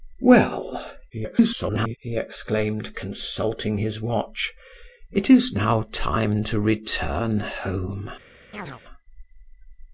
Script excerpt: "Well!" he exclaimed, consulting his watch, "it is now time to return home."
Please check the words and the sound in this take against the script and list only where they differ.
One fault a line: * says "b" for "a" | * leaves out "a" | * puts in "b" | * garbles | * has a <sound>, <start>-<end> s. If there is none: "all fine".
* garbles
* has a chirp, 8.5-8.8 s